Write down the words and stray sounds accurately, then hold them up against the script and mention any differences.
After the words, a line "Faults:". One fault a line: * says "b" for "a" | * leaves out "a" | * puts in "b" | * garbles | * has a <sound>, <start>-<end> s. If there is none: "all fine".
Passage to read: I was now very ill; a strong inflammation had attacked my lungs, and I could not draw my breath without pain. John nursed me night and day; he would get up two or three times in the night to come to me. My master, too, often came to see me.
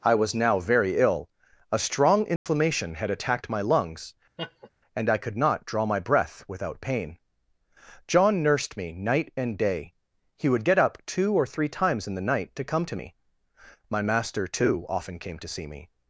I was now very ill; a strong inflammation had attacked my lungs, and I could not draw my breath without pain. John nursed me night and day; he would get up two or three times in the night to come to me. My master, too, often came to see me.
Faults:
* has a dropout, 2.4-2.5 s
* has a laugh, 4.4-4.7 s